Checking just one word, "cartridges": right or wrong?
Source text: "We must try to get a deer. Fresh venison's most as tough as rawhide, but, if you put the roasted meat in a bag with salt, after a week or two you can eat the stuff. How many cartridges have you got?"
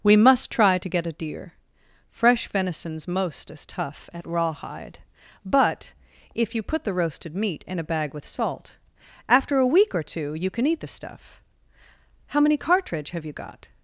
wrong